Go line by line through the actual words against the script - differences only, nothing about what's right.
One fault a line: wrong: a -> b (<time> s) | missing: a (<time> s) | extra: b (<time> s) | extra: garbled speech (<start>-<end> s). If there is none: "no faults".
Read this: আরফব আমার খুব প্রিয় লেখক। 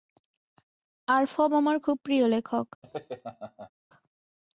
no faults